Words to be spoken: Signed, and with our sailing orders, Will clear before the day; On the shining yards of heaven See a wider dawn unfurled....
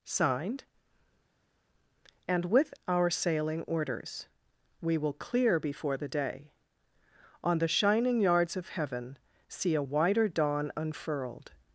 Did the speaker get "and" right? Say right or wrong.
right